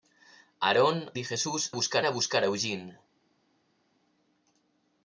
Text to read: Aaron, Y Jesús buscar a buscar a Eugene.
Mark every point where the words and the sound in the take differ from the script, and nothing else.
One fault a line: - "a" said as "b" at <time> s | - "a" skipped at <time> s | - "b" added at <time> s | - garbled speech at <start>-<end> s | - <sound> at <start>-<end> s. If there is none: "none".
none